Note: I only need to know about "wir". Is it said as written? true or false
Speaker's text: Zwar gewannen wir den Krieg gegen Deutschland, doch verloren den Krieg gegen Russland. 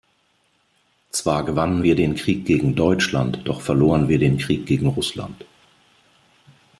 true